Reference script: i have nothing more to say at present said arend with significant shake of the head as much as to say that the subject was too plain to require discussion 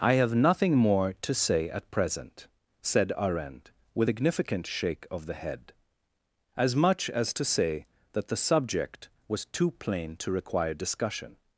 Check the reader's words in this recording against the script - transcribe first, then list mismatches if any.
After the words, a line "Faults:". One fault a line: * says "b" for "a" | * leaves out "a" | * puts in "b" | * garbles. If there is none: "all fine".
i have nothing more to say at present said arend with significant shake of the head as much as to say that the subject was too plain to require discussion
Faults:
all fine